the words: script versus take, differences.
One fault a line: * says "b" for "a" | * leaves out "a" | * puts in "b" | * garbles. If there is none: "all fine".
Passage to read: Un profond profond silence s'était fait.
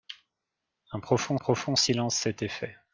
all fine